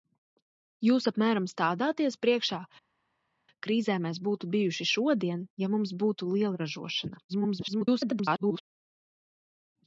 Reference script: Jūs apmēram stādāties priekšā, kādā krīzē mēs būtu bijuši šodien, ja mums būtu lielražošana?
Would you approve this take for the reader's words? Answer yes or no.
no